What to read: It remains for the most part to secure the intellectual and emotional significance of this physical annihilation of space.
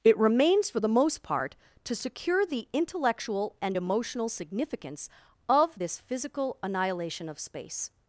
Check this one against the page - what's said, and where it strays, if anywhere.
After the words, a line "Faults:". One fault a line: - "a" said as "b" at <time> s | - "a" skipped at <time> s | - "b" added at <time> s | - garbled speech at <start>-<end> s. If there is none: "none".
It remains for the most part to secure the intellectual and emotional significance of this physical annihilation of space.
Faults:
none